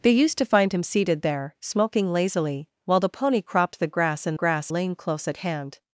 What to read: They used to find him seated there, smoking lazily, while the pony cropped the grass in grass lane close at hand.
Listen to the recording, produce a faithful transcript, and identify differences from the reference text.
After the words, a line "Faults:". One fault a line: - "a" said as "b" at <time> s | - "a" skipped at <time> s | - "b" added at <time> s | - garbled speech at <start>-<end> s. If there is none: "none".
They used to find him seated there, smoking lazily, while the pony cropped the grass in grass lane close at hand.
Faults:
none